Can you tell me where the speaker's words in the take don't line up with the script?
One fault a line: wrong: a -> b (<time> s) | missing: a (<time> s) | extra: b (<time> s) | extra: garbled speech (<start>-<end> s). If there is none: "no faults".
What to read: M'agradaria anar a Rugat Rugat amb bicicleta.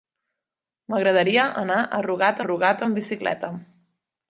no faults